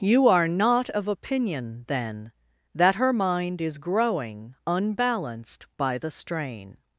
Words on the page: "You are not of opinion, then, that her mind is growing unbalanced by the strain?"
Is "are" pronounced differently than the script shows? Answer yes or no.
no